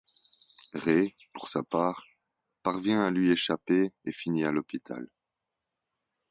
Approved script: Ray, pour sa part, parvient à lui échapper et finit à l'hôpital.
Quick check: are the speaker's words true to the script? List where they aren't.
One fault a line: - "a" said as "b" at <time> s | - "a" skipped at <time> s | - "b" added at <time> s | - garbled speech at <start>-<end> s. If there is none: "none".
none